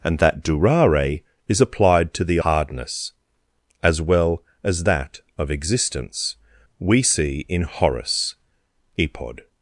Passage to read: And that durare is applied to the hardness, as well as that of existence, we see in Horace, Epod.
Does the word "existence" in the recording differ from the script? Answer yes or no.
no